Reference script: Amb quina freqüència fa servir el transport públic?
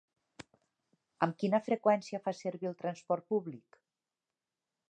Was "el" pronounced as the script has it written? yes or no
yes